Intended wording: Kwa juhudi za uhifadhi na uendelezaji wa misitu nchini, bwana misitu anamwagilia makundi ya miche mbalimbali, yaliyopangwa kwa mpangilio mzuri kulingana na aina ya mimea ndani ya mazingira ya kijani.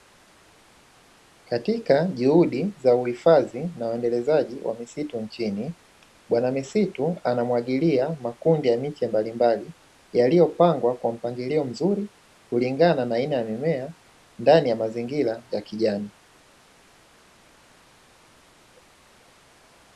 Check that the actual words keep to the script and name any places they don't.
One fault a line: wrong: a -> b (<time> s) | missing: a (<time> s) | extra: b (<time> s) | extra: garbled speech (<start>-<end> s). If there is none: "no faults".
wrong: Kwa -> Katika (1.4 s)